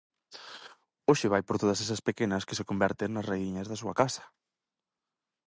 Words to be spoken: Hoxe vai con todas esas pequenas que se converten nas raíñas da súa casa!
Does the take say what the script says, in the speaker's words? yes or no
no